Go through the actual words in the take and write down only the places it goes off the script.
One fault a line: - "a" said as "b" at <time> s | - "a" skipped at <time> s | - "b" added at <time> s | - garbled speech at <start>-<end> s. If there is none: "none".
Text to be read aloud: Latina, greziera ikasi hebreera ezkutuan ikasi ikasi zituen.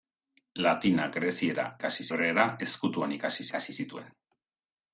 none